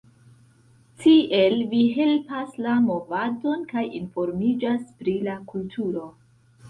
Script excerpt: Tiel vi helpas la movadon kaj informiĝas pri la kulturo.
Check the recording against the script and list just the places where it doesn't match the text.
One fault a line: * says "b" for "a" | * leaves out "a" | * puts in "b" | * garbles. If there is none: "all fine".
all fine